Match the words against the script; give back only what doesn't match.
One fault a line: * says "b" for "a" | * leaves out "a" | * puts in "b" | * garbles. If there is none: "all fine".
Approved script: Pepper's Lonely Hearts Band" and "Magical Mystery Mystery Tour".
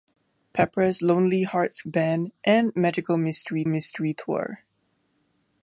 all fine